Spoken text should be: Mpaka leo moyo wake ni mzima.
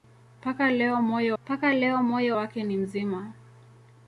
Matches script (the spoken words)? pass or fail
fail